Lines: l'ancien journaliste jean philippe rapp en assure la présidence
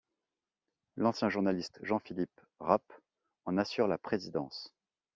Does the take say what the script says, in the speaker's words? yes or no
yes